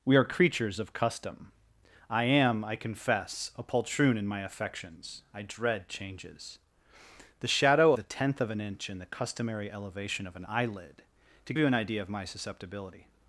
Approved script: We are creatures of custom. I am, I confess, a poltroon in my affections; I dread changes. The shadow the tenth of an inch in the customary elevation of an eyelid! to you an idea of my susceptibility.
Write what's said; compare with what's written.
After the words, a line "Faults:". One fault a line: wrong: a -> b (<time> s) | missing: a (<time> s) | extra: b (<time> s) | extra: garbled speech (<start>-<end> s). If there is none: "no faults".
We are creatures of custom. I am, I confess, a poltroon in my affections; I dread changes. The shadow the tenth of an inch in the customary elevation of an eyelid! to you an idea of my susceptibility.
Faults:
no faults